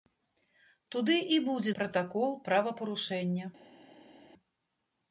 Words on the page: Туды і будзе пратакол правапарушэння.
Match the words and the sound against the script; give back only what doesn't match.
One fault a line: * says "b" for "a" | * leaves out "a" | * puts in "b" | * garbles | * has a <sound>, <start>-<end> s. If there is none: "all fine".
all fine